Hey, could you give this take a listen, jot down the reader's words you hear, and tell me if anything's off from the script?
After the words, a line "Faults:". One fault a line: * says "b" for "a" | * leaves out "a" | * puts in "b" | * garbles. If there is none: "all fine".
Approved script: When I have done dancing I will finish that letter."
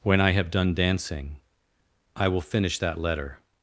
When I have done dancing I will finish that letter."
Faults:
all fine